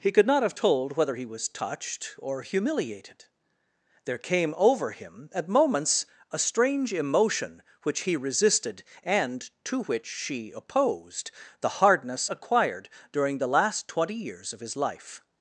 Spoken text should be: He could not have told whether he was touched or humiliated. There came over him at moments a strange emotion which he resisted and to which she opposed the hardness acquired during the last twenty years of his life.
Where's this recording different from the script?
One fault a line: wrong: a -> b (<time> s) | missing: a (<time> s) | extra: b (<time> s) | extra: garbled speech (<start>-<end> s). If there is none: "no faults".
no faults